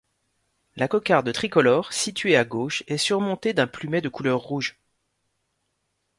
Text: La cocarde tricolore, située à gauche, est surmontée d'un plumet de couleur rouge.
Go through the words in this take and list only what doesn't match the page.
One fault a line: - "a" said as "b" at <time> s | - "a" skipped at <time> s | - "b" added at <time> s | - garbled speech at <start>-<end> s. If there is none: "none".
none